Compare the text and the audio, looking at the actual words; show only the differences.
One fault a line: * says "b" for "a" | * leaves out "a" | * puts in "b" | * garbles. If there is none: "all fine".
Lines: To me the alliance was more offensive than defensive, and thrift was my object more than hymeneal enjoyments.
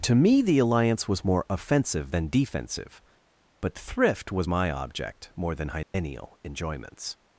* says "but" for "and"